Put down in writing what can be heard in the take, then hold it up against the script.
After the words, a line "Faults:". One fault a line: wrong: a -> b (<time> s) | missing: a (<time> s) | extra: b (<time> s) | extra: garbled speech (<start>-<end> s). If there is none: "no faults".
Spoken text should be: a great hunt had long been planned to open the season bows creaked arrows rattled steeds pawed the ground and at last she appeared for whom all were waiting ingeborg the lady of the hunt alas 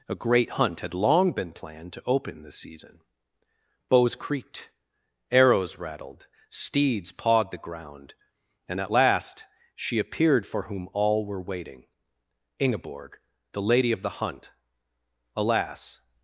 a great hunt had long been planned to open the season bows creaked arrows rattled steeds pawed the ground and at last she appeared for whom all were waiting ingeborg the lady of the hunt alas
Faults:
no faults